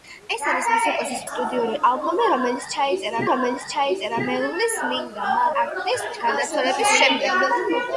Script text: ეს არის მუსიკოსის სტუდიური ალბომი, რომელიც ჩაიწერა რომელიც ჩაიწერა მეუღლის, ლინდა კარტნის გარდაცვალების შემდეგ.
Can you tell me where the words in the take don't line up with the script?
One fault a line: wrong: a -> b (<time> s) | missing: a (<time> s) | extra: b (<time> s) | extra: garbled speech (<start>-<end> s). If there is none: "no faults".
no faults